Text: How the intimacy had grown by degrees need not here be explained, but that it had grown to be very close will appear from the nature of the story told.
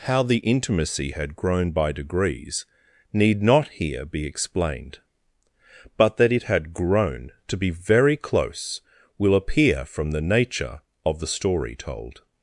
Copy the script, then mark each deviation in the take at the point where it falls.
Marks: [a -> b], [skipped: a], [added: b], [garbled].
How the intimacy had grown by degrees need not here be explained, but that it had grown to be very close will appear from the nature of the story told.